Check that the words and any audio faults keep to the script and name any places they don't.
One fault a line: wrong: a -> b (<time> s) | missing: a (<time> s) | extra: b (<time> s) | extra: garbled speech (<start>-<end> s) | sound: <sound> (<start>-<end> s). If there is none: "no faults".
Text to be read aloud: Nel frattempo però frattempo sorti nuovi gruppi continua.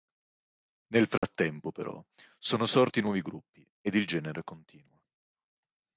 sound: dropout (1.2-1.2 s)
wrong: frattempo -> sono (2.4 s)
extra: ed il genere (3.8 s)